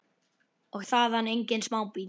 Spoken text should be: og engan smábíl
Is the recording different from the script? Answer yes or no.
yes